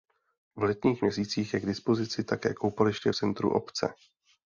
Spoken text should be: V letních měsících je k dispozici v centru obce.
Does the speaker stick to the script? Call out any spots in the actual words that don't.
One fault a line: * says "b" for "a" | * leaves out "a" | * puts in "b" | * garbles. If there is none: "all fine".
* puts in "také koupaliště"